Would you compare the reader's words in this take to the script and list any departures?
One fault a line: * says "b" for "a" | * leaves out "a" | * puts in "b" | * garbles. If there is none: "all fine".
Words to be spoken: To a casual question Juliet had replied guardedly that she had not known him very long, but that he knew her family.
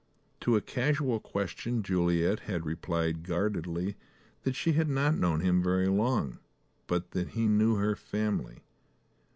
all fine